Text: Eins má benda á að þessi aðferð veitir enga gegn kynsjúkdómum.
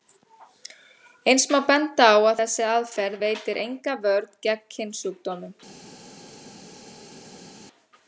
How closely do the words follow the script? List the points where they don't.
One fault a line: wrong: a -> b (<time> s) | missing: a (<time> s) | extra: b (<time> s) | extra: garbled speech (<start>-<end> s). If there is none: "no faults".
extra: vörn (4.1 s)